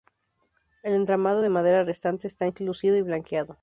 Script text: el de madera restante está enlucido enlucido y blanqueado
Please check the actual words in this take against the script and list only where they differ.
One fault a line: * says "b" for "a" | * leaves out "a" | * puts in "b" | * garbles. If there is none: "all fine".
* puts in "entramado"
* leaves out "enlucido"